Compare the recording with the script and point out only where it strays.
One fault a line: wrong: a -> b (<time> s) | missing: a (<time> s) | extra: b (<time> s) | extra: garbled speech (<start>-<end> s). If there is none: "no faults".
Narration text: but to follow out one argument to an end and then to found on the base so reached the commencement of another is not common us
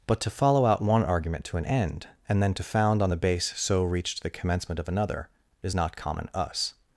no faults